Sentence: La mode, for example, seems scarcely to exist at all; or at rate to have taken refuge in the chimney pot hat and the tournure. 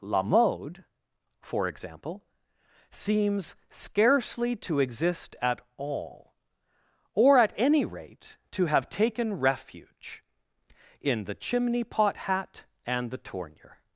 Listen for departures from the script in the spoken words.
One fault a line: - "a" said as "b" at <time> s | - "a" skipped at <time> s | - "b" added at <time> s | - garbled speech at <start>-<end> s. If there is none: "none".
- "any" added at 7.5 s